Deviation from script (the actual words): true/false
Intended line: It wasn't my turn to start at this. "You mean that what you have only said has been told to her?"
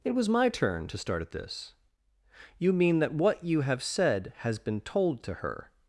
true